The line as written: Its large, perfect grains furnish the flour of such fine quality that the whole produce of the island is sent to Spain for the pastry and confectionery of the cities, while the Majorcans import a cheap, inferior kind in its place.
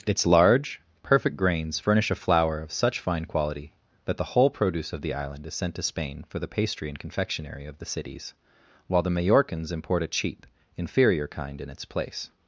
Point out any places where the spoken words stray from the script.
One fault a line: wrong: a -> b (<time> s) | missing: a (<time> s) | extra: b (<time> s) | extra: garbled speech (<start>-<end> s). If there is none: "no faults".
wrong: the -> a (2.1 s)